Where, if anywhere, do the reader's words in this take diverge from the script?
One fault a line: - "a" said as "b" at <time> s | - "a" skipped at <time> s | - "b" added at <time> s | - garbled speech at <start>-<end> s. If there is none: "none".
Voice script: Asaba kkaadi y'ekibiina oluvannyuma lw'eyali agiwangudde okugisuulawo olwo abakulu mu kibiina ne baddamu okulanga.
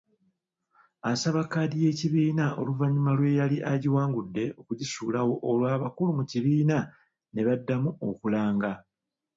none